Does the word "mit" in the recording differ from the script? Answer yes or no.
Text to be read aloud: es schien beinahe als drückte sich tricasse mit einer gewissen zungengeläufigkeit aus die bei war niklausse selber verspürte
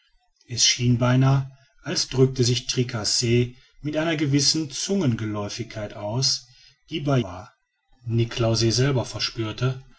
no